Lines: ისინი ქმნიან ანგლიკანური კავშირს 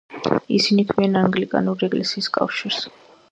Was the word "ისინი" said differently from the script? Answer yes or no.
no